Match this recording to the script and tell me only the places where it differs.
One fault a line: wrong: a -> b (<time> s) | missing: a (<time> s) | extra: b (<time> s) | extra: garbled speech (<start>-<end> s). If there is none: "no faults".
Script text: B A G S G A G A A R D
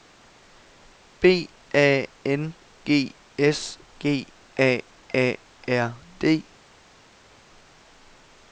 extra: N (2.2 s)
missing: G A (4.8 s)